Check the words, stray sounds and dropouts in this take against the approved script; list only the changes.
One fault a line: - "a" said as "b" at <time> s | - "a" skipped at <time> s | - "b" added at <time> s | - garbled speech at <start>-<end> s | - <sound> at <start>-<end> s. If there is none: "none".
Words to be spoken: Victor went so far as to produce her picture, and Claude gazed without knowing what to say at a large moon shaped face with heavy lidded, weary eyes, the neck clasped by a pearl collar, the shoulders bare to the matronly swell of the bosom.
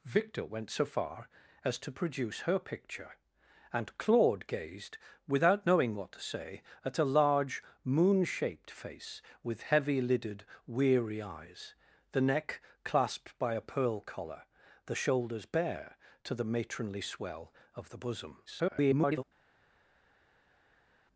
- garbled speech at 18.5-19.2 s